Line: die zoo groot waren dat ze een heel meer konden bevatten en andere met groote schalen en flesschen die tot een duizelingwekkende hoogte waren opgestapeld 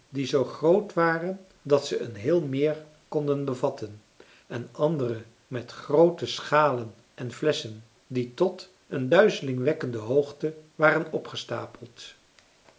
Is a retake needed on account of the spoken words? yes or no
no